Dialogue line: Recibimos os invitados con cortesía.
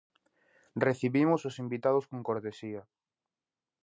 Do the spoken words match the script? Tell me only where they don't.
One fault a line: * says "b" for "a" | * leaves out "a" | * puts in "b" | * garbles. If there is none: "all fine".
all fine